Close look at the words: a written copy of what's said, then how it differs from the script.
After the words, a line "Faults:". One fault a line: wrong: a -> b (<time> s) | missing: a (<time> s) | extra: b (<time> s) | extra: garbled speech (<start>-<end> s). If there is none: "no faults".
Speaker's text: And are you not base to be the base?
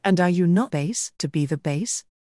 And are you not base to be the base?
Faults:
no faults